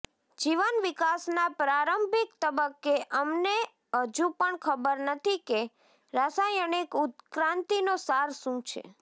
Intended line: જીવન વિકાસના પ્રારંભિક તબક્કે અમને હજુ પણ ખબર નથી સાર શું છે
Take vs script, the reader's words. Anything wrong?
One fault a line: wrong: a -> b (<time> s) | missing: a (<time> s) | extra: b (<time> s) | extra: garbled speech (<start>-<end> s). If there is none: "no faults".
extra: કે રાસાયણિક ઉત્ક્રાંતિનો (5.5 s)